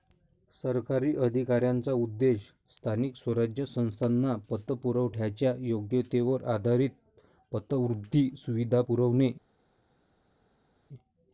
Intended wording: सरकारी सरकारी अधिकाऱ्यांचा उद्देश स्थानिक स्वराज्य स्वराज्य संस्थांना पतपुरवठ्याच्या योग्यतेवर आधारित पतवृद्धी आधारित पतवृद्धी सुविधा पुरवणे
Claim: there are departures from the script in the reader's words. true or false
true